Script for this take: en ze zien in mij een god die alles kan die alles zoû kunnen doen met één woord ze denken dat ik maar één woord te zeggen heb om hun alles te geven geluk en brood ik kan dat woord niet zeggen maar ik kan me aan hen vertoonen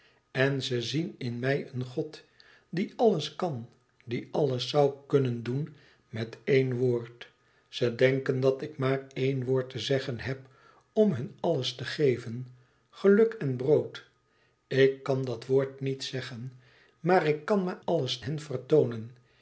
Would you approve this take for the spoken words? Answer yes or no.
no